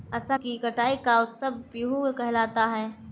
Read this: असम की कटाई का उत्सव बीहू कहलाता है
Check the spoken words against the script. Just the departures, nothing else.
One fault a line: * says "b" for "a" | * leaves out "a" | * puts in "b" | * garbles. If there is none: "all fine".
all fine